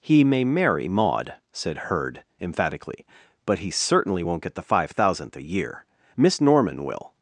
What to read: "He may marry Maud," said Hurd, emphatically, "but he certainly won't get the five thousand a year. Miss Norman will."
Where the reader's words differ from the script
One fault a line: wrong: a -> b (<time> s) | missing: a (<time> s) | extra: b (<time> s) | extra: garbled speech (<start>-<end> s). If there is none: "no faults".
wrong: thousand -> thousandth (4.9 s)